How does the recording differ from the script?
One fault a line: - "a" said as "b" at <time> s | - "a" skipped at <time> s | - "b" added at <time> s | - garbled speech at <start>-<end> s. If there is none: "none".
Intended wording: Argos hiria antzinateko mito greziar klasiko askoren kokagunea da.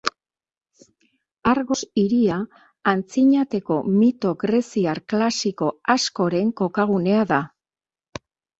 none